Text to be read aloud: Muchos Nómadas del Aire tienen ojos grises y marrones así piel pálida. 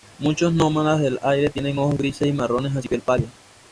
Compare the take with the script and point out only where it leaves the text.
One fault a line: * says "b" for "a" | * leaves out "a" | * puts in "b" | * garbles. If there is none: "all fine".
all fine